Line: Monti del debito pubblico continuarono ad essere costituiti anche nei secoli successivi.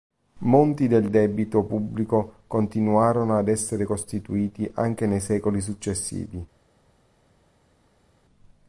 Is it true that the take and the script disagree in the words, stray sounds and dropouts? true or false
false